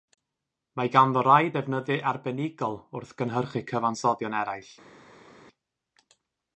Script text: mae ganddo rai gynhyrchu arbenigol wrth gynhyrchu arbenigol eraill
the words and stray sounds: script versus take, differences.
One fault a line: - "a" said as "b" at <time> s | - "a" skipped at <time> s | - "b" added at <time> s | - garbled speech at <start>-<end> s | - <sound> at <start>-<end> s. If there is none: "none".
- "gynhyrchu" said as "defnyddiau" at 1.6 s
- "arbenigol" said as "cyfansoddion" at 3.7 s